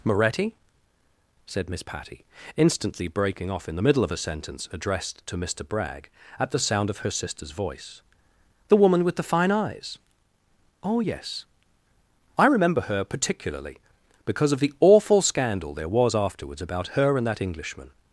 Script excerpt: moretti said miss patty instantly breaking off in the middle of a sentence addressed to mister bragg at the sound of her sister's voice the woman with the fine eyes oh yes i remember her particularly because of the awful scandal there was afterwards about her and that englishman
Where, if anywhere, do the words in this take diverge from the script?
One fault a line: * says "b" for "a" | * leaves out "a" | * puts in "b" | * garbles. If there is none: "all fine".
all fine